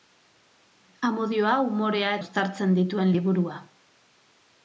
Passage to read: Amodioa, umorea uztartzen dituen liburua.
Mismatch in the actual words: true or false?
false